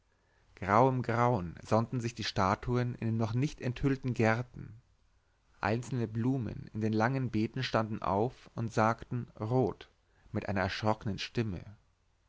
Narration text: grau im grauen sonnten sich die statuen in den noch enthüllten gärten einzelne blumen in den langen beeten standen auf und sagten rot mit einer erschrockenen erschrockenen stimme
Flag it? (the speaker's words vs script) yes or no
yes